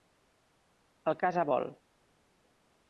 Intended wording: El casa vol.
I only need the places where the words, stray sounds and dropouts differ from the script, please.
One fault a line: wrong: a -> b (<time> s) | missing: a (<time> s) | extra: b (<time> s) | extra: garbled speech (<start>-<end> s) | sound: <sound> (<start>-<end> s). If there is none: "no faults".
no faults